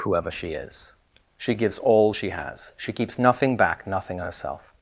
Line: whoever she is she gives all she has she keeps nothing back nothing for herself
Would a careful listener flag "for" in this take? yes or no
yes